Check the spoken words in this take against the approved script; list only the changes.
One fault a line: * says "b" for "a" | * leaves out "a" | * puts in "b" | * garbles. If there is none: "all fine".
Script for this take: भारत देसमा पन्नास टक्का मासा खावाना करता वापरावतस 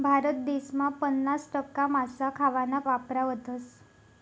* leaves out "करता"